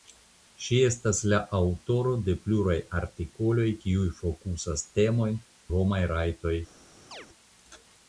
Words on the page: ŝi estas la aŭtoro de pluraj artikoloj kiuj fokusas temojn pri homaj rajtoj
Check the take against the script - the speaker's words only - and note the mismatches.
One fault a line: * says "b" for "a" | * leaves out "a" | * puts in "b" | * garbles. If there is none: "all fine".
* leaves out "pri"